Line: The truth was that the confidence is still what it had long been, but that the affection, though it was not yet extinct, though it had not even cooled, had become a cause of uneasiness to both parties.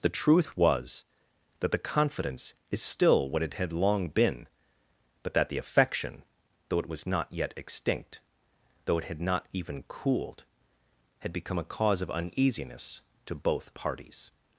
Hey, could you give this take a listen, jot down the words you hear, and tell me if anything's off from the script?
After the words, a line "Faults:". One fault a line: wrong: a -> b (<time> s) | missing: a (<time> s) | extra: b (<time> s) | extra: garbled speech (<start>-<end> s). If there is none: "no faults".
The truth was that the confidence is still what it had long been, but that the affection, though it was not yet extinct, though it had not even cooled, had become a cause of uneasiness to both parties.
Faults:
no faults